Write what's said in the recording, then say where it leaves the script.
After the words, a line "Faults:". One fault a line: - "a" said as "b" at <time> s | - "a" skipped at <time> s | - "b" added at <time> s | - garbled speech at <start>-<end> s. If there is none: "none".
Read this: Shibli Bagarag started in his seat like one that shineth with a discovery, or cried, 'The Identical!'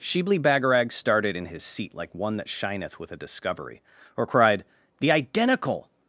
Shibli Bagarag started in his seat like one that shineth with a discovery, or cried, 'The Identical!'
Faults:
none